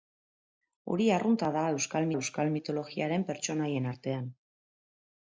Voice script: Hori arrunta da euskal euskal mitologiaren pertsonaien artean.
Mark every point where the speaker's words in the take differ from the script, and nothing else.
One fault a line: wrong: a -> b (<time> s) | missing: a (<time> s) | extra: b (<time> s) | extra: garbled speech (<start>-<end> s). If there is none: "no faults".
no faults